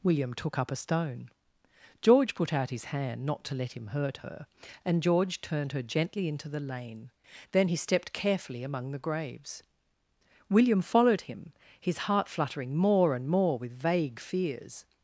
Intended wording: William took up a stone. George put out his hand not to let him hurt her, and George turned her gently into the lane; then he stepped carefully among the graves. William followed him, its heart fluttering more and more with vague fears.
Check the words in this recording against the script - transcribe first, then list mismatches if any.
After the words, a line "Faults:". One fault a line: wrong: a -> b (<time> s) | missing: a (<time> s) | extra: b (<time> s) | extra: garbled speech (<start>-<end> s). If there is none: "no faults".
William took up a stone. George put out his hand not to let him hurt her, and George turned her gently into the lane; then he stepped carefully among the graves. William followed him, his heart fluttering more and more with vague fears.
Faults:
wrong: its -> his (11.8 s)